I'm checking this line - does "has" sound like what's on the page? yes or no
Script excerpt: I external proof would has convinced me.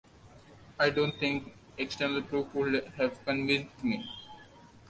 no